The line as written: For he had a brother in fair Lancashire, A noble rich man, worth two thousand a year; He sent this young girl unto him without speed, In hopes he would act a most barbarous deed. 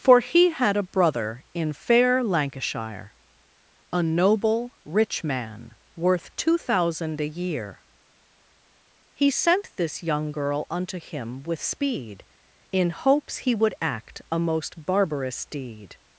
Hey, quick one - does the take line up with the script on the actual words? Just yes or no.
no